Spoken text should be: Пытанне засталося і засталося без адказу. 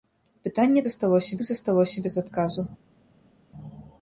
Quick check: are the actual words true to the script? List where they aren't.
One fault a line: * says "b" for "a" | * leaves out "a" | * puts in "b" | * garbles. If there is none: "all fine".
all fine